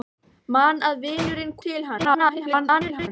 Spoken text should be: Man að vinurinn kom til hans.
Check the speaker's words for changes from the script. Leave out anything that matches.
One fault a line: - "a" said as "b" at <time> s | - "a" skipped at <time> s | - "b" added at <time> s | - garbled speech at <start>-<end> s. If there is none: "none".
- "kom" skipped at 1.6 s
- garbled speech at 2.0-3.1 s